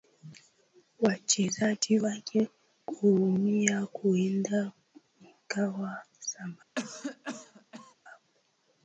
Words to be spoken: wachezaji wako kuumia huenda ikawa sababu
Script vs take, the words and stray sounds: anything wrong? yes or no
yes